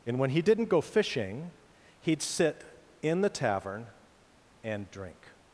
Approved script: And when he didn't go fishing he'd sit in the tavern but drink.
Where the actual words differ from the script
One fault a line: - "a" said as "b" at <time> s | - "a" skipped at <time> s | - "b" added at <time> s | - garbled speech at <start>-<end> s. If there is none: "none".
- "but" said as "and" at 4.6 s